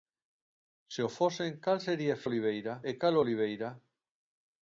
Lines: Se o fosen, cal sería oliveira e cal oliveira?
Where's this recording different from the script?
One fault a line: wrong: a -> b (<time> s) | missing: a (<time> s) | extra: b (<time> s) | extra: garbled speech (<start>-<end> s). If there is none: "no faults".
no faults